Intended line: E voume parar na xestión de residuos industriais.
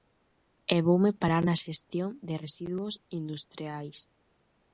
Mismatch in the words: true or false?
false